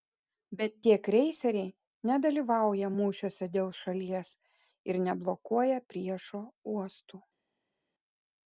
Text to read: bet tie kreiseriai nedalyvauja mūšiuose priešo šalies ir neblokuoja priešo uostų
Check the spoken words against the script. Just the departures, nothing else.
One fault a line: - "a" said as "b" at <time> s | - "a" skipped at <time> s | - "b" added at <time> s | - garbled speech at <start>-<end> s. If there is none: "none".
- "priešo" said as "dėl" at 3.6 s